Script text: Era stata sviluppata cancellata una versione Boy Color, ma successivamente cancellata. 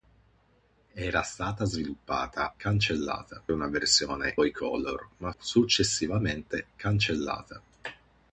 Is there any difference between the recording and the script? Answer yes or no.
no